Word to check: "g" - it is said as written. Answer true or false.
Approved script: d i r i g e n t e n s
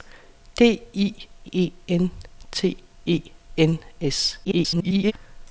false